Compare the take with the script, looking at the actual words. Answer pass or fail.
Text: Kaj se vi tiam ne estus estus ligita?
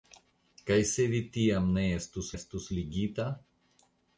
pass